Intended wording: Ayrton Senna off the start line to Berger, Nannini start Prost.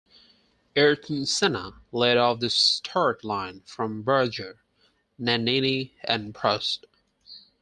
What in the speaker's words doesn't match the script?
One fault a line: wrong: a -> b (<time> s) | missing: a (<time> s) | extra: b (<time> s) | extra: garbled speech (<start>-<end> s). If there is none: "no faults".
extra: led (1.9 s)
wrong: to -> from (3.7 s)
wrong: start -> and (6.0 s)